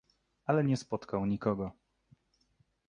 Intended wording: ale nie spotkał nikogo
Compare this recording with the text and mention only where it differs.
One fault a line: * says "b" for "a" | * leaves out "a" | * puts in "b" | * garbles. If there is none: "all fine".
all fine